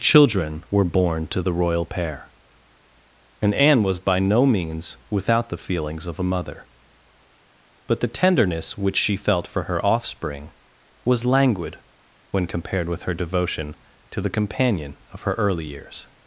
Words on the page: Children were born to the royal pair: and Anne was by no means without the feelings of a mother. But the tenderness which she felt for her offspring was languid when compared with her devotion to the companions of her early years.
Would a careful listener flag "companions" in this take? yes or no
yes